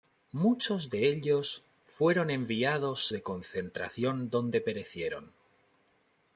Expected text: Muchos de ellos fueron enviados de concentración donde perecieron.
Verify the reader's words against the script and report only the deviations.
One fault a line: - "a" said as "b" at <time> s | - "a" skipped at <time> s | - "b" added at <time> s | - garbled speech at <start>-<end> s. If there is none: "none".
none